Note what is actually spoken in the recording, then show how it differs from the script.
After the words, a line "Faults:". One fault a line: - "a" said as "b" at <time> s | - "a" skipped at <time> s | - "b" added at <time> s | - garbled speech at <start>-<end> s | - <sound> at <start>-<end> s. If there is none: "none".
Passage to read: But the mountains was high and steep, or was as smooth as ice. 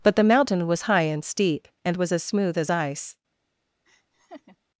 But the mountain was high and steep, and was as smooth as ice.
Faults:
- "mountains" said as "mountain" at 0.2 s
- "or" said as "and" at 1.9 s
- laugh at 3.9-4.6 s